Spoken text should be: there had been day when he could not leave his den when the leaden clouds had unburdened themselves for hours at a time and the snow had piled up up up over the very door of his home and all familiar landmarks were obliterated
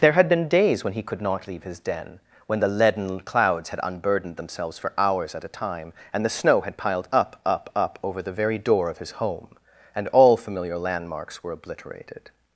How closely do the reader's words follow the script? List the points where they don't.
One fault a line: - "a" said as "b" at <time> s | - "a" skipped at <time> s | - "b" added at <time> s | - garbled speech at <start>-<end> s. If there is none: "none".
- "day" said as "days" at 0.5 s